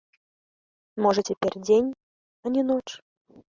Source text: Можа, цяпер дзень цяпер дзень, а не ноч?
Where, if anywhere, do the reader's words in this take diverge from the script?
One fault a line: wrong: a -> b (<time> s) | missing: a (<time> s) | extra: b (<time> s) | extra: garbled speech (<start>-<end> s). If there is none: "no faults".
missing: цяпер дзень (1.9 s)